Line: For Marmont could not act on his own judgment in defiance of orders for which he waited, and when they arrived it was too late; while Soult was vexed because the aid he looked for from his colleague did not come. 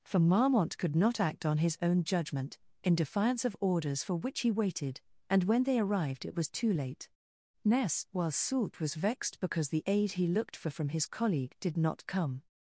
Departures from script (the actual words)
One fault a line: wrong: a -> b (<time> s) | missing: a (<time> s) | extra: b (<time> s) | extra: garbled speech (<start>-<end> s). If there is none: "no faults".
extra: ness (7.6 s)